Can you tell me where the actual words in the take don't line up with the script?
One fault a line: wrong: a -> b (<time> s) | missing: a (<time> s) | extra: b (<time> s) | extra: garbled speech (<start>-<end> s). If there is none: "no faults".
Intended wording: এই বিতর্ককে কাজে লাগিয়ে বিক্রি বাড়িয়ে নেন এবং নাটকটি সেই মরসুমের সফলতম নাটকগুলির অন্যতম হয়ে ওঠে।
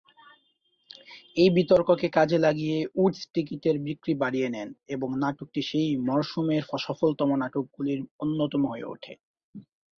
extra: উডস টিকিটের (3.0 s)